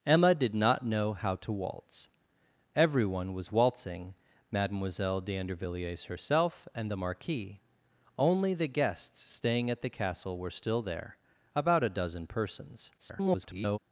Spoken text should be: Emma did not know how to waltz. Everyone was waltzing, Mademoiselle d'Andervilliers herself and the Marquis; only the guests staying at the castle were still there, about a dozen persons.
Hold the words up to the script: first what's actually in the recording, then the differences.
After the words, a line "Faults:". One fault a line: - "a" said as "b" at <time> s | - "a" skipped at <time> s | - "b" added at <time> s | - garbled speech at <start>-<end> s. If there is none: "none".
Emma did not know how to waltz. Everyone was waltzing, Mademoiselle d'Andervilliers herself and the Marquis; only the guests staying at the castle were still there, about a dozen persons. [garbled]
Faults:
- garbled speech at 13.0-13.8 s